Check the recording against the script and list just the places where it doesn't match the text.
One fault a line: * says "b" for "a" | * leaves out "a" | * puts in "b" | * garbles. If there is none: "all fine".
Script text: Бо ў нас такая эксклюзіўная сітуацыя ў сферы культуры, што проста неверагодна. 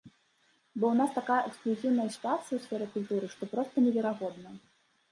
all fine